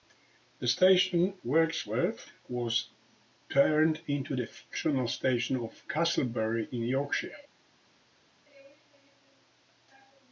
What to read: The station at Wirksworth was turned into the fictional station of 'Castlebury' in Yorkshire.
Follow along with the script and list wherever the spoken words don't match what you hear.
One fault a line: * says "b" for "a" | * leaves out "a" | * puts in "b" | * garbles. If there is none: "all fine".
* leaves out "at"